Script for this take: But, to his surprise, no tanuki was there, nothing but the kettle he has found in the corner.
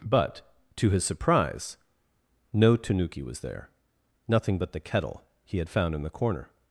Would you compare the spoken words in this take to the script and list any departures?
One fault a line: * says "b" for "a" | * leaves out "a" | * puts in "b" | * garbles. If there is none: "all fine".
* says "had" for "has"